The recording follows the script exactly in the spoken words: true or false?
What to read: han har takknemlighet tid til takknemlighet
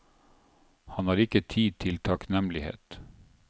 false